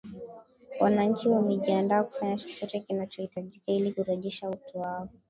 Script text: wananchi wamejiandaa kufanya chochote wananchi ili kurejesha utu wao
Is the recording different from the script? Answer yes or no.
yes